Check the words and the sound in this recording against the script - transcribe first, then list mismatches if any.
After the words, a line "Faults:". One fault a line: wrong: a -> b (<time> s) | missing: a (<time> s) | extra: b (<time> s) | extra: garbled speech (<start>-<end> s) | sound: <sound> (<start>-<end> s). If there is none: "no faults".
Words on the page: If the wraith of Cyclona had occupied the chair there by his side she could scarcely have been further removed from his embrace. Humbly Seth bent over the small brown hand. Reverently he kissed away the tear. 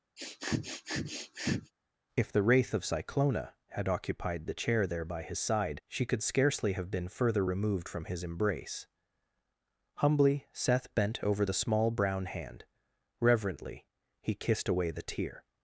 If the wraith of Cyclona had occupied the chair there by his side she could scarcely have been further removed from his embrace. Humbly Seth bent over the small brown hand. Reverently he kissed away the tear.
Faults:
sound: sniff (0.2-1.7 s)